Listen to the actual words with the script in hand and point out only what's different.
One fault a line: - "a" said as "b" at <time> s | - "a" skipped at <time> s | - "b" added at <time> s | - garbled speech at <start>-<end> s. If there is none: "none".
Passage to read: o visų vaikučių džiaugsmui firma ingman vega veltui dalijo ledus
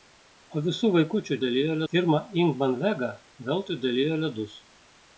- "džiaugsmui" said as "dalijo" at 1.5 s